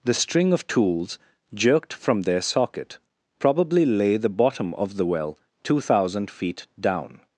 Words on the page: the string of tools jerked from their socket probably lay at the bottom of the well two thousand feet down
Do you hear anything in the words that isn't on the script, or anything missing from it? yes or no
yes